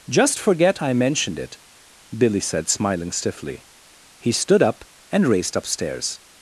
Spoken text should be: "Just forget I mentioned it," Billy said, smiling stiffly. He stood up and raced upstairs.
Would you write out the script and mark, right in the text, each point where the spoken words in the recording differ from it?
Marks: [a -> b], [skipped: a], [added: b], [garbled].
"Just forget I mentioned it," Billy said, smiling stiffly. He stood up and raced upstairs.